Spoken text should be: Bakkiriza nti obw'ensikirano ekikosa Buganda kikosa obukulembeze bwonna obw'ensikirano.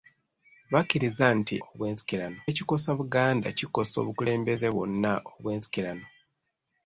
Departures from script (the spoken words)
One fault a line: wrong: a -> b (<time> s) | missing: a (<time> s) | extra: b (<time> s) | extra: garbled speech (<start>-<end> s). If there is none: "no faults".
no faults